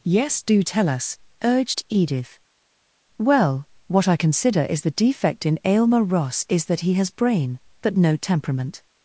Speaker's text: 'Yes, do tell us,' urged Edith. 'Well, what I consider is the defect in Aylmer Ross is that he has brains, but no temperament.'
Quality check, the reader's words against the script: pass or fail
fail